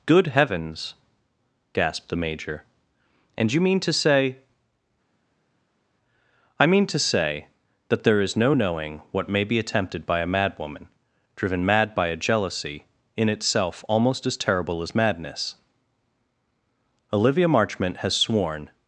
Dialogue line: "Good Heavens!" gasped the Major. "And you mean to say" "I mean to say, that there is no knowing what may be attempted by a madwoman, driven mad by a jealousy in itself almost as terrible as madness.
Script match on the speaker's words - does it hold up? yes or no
no